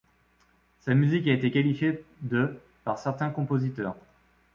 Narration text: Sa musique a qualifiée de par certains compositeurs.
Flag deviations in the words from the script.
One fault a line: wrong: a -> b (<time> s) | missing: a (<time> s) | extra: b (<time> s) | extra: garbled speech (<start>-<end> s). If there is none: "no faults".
extra: été (1.3 s)